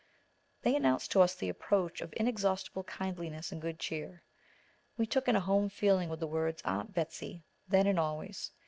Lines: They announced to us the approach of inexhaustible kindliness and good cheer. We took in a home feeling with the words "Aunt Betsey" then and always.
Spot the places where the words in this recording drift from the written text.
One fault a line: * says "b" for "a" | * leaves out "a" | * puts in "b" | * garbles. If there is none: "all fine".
all fine